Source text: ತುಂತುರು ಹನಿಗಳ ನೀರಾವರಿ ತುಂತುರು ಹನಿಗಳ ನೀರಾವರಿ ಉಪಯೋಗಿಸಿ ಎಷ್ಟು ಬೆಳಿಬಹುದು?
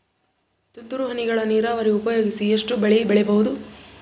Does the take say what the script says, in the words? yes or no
no